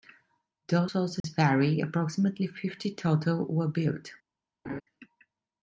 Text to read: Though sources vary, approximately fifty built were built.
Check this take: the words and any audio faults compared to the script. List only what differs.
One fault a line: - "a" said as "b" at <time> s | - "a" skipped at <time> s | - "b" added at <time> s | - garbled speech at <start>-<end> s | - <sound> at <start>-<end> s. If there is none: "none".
- dropout at 1.2-1.2 s
- "built" said as "total" at 2.9 s
- laugh at 4.6-4.8 s